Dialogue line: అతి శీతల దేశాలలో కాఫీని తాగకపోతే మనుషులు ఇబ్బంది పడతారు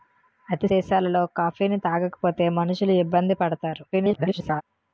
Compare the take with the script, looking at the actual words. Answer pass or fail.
fail